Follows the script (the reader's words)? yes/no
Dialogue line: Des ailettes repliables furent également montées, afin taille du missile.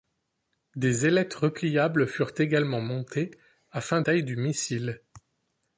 yes